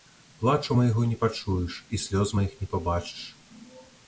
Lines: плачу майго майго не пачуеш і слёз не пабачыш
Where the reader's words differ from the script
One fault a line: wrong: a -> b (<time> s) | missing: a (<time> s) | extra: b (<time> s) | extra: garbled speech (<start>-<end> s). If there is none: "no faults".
missing: майго (1.0 s)
extra: маіх (2.4 s)